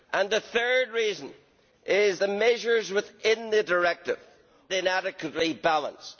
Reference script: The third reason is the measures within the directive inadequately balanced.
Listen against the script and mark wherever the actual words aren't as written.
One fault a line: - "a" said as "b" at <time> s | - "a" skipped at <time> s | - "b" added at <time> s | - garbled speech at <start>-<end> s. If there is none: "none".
none